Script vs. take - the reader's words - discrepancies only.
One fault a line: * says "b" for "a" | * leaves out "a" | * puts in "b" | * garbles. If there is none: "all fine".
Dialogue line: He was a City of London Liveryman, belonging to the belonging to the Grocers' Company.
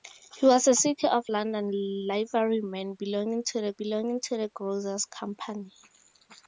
all fine